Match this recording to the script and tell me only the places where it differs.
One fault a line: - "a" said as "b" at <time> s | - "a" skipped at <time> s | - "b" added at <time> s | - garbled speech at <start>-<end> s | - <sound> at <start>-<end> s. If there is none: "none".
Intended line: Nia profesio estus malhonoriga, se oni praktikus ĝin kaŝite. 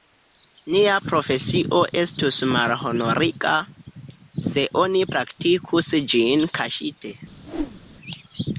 - whoosh at 7.4-7.8 s